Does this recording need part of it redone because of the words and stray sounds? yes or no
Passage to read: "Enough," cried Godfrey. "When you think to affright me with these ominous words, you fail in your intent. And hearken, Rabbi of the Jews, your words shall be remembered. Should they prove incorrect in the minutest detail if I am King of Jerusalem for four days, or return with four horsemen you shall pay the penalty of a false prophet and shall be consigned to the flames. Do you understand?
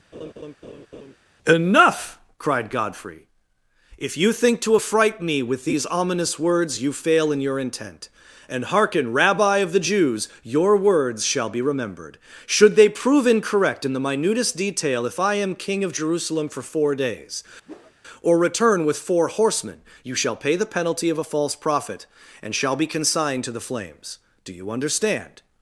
yes